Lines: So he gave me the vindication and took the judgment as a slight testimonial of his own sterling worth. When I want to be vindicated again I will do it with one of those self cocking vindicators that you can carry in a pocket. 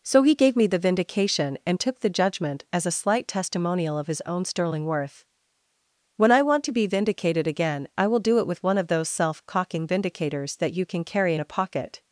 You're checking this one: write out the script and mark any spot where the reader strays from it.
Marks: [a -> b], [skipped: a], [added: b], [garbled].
So he gave me the vindication and took the judgment as a slight testimonial of his own sterling worth. When I want to be vindicated again I will do it with one of those self cocking vindicators that you can carry in a pocket.